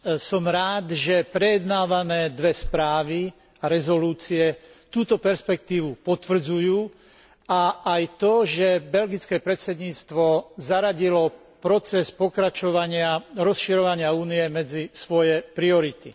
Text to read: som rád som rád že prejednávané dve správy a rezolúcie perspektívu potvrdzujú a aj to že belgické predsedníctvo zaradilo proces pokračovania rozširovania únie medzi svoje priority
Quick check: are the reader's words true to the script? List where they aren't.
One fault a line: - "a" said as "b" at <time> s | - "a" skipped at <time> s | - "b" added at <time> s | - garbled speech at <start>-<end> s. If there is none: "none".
- "som rád" skipped at 1.0 s
- "túto" added at 4.9 s